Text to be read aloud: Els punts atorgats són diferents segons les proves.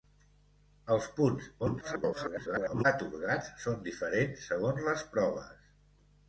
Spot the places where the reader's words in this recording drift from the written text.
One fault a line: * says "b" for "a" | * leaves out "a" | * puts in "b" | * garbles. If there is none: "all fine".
* garbles